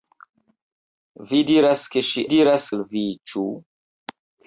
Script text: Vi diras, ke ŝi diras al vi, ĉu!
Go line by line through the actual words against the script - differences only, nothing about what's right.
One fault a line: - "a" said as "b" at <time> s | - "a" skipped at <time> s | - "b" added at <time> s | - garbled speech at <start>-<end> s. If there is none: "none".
none